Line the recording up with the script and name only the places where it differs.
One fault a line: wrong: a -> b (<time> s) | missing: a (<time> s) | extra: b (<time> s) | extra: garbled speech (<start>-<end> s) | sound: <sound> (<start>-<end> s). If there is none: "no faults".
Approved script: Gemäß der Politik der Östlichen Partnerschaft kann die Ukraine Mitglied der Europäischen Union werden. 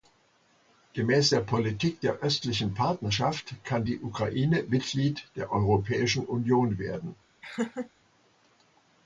sound: laugh (7.4-7.9 s)